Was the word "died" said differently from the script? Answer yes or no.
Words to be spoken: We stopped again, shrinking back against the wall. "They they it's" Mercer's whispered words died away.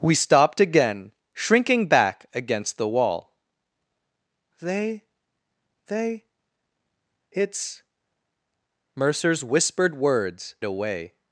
yes